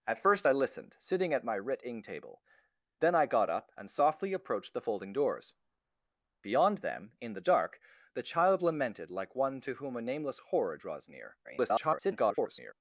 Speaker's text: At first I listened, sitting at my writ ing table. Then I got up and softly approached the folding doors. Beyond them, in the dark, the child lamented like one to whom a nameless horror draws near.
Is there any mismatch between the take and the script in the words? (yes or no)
yes